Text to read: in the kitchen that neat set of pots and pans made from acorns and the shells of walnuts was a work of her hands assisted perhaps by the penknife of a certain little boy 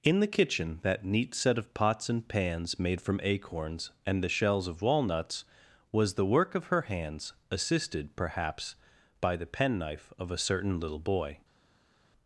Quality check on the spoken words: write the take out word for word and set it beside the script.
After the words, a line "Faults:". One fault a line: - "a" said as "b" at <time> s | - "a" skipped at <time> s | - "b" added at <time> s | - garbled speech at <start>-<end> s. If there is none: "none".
in the kitchen that neat set of pots and pans made from acorns and the shells of walnuts was the work of her hands assisted perhaps by the penknife of a certain little boy
Faults:
- "a" said as "the" at 6.1 s